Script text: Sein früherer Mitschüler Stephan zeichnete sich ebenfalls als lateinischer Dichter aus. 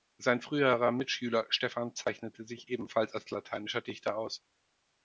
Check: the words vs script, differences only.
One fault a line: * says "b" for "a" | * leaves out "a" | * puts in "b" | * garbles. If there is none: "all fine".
all fine